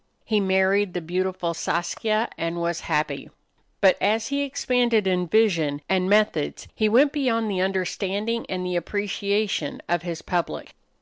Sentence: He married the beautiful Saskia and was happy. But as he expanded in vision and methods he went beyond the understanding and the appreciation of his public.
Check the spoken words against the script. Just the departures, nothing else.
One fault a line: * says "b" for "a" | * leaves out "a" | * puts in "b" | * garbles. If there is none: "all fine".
all fine